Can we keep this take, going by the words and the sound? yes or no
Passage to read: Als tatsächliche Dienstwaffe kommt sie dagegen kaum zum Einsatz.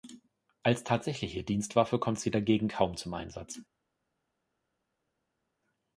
yes